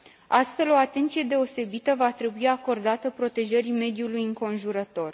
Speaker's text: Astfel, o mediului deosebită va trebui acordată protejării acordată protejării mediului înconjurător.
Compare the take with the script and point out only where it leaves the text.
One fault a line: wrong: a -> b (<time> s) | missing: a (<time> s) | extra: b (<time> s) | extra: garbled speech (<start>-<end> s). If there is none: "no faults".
wrong: mediului -> atenție (0.8 s)
missing: acordată protejării (3.7 s)